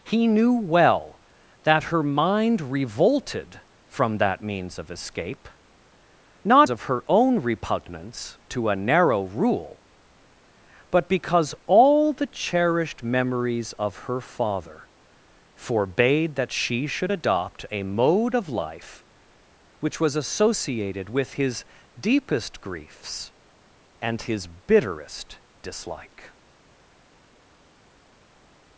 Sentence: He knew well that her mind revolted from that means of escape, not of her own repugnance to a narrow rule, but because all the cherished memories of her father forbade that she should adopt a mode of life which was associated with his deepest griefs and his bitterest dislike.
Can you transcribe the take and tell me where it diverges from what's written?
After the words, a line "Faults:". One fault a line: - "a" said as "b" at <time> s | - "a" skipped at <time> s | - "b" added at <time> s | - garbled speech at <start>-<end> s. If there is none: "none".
He knew well that her mind revolted from that means of escape, not of her own repugnance to a narrow rule, but because all the cherished memories of her father forbade that she should adopt a mode of life which was associated with his deepest griefs and his bitterest dislike.
Faults:
none